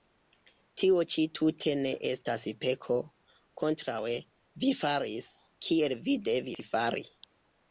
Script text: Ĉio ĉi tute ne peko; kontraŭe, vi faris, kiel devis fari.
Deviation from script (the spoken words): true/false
true